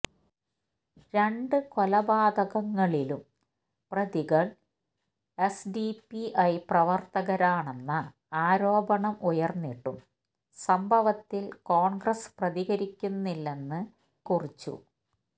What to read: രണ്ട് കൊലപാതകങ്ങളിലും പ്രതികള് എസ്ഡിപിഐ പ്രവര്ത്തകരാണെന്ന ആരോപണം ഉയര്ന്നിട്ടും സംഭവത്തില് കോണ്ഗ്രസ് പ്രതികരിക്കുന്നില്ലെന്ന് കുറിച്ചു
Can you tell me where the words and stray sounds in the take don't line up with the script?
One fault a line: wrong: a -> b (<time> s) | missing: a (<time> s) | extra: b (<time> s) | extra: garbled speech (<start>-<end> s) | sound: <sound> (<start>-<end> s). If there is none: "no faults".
no faults